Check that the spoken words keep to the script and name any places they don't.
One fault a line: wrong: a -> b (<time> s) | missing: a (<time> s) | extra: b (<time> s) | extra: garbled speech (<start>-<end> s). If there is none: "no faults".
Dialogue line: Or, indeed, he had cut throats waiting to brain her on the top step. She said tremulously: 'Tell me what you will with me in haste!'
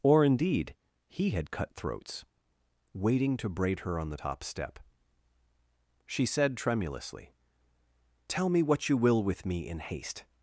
wrong: brain -> braid (3.5 s)